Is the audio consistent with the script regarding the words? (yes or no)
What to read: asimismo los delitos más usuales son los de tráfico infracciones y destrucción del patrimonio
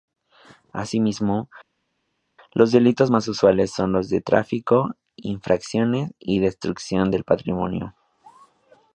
yes